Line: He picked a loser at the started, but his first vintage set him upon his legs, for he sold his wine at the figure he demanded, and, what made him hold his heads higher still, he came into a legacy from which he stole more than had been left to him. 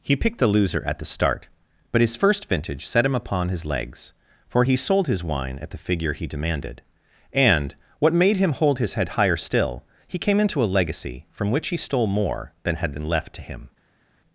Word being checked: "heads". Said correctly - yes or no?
no